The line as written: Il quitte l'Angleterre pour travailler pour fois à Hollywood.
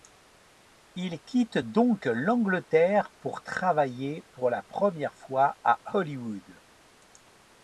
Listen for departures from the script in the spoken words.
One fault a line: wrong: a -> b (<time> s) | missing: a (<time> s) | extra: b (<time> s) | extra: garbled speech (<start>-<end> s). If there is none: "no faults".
extra: donc (1.6 s)
extra: la première (4.5 s)